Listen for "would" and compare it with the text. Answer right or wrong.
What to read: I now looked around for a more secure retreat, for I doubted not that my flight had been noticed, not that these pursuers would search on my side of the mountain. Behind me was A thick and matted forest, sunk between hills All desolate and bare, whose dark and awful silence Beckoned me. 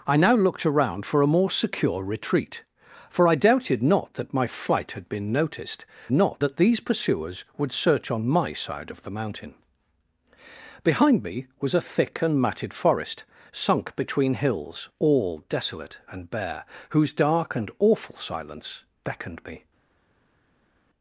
right